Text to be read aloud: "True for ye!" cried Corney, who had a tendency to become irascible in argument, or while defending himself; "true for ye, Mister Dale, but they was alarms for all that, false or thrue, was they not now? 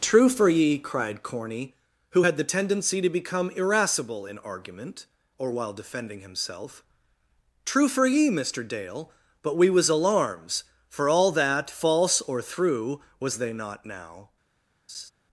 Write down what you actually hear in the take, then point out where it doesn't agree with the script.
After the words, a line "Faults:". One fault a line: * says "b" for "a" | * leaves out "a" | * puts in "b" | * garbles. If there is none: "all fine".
"True for ye!" cried Corney, who had the tendency to become irascible in argument, or while defending himself; "true for ye, Mister Dale, but we was alarms for all that, false or thrue, was they not now?
Faults:
* says "the" for "a"
* says "we" for "they"